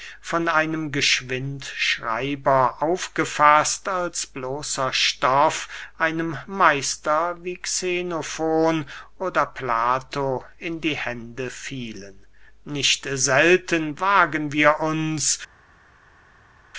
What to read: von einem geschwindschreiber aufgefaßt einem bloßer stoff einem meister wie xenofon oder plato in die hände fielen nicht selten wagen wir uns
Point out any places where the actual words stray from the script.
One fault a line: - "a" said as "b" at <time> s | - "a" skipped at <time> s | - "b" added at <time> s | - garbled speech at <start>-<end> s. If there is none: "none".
- "einem" said as "als" at 3.9 s